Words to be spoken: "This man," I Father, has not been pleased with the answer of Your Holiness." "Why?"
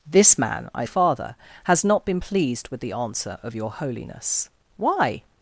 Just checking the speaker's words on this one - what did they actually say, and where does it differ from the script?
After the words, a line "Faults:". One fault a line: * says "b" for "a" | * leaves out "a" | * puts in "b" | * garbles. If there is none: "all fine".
"This man," I Father, has not been pleased with the answer of Your Holiness." "Why?"
Faults:
all fine